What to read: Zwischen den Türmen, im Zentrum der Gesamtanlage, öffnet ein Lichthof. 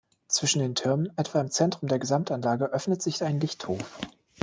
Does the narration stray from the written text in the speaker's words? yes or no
yes